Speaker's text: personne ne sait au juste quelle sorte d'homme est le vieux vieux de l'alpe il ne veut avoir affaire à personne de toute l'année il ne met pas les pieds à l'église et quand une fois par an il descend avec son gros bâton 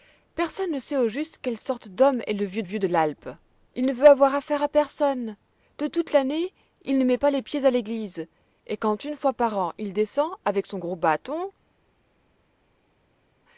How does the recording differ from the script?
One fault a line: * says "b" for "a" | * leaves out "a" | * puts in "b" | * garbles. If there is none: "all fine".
all fine